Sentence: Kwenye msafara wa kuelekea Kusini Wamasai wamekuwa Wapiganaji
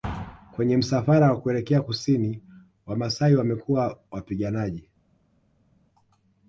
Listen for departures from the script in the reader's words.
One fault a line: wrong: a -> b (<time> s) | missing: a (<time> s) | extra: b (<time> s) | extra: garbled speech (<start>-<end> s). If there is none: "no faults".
no faults